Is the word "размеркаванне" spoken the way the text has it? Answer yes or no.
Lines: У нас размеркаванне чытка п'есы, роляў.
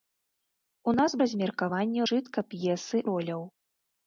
yes